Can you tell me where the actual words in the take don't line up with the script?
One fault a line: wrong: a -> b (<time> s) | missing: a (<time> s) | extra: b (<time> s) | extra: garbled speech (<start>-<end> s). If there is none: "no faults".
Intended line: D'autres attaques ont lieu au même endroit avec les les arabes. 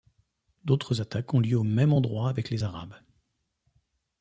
missing: les (2.6 s)